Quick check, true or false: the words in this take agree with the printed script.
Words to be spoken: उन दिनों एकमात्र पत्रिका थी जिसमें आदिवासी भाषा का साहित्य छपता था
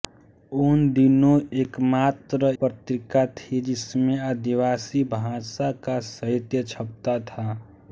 true